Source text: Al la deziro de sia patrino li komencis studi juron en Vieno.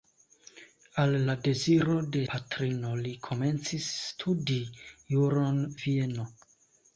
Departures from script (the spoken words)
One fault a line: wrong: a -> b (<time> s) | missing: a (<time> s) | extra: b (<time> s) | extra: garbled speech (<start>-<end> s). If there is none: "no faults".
missing: sia (2.2 s)
missing: en (5.6 s)